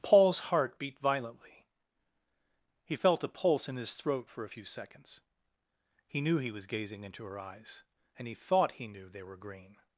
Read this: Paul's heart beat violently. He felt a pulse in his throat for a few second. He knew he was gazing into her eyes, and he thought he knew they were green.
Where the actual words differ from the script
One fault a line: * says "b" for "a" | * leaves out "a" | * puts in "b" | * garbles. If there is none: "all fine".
* says "seconds" for "second"